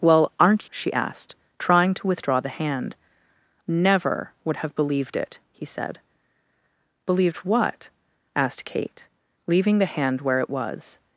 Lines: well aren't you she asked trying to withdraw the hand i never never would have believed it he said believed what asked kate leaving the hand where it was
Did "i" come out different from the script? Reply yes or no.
yes